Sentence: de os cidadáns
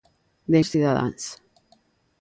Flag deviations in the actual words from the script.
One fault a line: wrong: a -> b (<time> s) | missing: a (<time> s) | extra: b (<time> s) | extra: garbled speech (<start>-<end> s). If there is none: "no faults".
no faults